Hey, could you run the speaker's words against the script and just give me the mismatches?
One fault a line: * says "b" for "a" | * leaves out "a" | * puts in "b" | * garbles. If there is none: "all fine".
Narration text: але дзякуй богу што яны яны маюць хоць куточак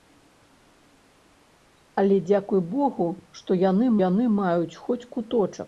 all fine